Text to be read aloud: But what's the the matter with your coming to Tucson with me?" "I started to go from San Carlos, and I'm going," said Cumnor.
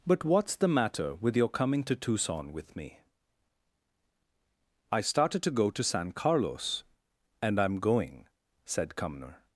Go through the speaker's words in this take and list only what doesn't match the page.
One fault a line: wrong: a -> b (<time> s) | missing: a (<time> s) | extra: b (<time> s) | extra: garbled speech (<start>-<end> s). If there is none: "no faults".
missing: the (0.7 s)
wrong: from -> to (5.7 s)